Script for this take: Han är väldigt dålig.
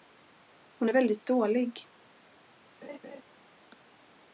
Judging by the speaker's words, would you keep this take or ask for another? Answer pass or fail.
fail